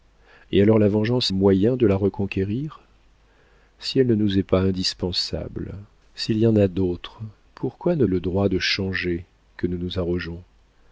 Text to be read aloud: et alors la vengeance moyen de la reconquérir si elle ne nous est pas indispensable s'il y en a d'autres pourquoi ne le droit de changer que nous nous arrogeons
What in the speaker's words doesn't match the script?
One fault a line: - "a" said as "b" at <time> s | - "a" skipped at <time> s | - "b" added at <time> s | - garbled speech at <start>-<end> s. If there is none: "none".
none